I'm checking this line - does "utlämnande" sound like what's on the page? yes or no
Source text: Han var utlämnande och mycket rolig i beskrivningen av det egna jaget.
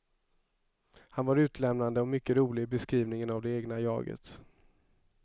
yes